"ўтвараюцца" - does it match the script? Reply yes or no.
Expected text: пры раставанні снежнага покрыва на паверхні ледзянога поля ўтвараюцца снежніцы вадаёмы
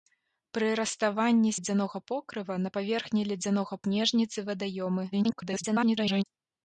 no